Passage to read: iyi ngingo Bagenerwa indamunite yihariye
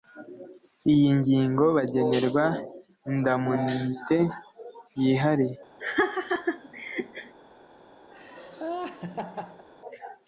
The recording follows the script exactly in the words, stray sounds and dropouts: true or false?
false